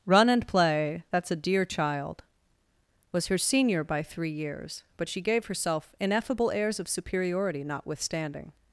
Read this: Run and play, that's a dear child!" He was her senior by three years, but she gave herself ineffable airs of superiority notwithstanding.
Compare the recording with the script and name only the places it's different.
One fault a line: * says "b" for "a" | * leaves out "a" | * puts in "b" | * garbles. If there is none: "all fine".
* leaves out "He"